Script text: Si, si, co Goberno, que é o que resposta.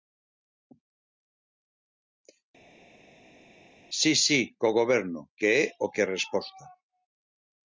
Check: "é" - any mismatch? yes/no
no